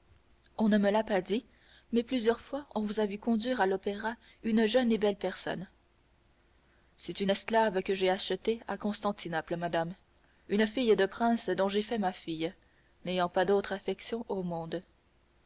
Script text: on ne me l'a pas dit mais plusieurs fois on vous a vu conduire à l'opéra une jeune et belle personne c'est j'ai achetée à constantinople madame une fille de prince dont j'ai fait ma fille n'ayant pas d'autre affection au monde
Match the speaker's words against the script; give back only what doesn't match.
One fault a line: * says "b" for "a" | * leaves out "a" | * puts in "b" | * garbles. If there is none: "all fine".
* puts in "une esclave que"